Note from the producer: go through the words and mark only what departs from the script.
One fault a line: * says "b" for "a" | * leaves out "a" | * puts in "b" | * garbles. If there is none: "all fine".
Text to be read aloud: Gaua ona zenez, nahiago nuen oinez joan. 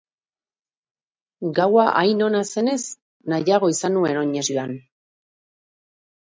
* puts in "hain"
* puts in "izan"